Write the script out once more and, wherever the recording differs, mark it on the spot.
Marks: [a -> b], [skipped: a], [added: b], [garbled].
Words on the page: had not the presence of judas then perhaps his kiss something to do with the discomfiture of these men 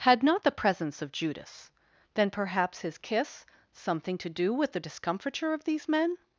had not the presence of judas then perhaps his kiss something to do with the discomfiture of these men